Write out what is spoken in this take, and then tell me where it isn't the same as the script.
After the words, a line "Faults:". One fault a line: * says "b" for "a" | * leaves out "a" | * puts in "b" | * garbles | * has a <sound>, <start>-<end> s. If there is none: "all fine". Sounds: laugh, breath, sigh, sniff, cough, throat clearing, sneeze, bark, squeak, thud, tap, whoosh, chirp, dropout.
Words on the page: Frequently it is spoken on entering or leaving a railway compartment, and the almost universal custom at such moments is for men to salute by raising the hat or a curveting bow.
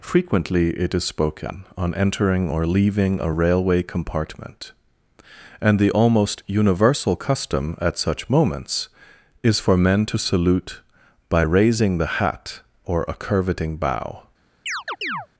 Frequently it is spoken on entering or leaving a railway compartment, and the almost universal custom at such moments is for men to salute by raising the hat or a curveting bow.
Faults:
* has a chirp, 14.7-15.3 s